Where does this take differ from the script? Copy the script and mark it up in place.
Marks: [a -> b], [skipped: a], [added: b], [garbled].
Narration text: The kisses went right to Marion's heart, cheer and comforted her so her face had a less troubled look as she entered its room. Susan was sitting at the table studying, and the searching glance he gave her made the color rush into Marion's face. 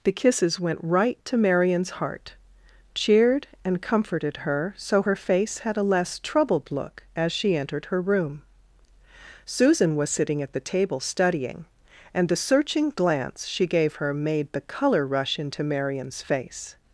The kisses went right to Marion's heart, [cheer -> cheered] and comforted her so her face had a less troubled look as she entered [its -> her] room. Susan was sitting at the table studying, and the searching glance [he -> she] gave her made the color rush into Marion's face.